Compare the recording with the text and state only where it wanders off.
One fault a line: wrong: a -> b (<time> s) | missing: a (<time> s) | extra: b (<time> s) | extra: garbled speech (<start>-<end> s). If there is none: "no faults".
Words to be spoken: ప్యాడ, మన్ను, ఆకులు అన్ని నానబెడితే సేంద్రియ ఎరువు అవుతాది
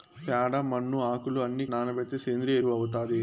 no faults